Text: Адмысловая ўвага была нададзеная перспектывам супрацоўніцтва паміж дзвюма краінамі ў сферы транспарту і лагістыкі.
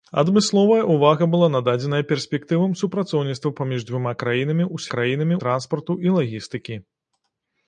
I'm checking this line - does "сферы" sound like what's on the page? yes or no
no